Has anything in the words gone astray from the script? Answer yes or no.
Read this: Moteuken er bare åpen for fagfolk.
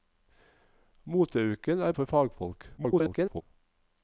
yes